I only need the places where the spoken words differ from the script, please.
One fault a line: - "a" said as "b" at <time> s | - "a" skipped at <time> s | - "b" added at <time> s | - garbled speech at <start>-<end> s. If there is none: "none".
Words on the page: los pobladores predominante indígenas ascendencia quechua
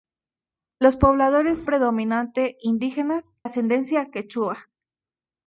none